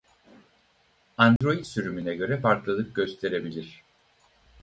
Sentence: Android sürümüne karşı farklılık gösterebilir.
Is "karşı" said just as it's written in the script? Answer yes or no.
no